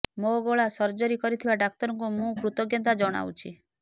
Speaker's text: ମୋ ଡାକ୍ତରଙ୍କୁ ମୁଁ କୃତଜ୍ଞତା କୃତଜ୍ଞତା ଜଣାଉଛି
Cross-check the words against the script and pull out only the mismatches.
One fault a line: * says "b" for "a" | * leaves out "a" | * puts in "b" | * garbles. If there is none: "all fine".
* puts in "ଗଳା ସର୍ଜରୀ କରିଥିବା"
* leaves out "କୃତଜ୍ଞତା"